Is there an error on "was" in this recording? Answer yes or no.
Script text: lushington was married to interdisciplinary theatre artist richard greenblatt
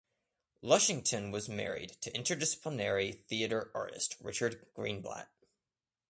no